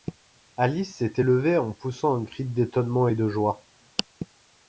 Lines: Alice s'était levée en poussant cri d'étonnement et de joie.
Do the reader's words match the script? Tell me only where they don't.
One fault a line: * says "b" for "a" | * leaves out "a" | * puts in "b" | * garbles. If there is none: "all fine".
* puts in "un"